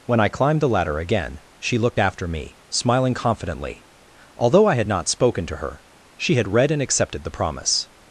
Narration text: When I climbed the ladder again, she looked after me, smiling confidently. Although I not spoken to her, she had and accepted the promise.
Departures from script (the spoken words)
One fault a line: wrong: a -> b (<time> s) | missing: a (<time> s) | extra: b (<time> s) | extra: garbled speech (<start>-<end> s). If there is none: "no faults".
extra: had (4.8 s)
extra: read (6.5 s)